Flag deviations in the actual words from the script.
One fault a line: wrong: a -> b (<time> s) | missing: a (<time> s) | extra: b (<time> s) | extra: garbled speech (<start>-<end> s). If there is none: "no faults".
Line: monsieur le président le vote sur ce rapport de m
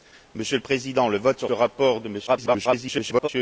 missing: ce (1.5 s)
extra: garbled speech (2.3-3.3 s)